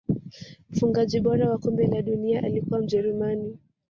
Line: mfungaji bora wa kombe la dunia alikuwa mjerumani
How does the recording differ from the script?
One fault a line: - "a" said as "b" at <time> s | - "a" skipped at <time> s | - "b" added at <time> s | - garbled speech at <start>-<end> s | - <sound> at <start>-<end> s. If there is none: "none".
none